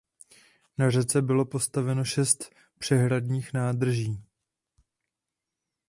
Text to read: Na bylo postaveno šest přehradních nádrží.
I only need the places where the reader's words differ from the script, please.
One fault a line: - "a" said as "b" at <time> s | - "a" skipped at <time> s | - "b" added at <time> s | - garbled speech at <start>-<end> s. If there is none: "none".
- "řece" added at 0.9 s